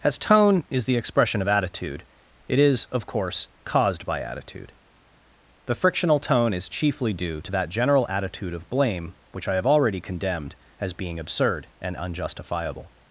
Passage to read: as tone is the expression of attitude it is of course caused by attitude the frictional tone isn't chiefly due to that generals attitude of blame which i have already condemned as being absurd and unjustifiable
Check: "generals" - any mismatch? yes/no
yes